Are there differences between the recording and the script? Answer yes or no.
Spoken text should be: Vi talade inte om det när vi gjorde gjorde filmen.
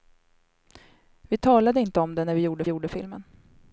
no